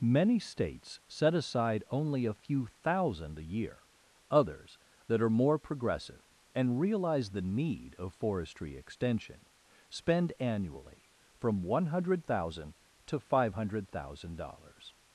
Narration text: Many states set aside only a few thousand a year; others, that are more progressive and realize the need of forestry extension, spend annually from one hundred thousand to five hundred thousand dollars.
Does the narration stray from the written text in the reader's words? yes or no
no